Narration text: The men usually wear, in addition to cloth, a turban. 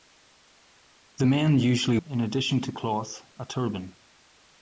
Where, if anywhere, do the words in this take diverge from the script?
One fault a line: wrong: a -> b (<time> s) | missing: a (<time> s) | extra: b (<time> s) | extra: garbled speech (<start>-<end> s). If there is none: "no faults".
missing: wear (2.0 s)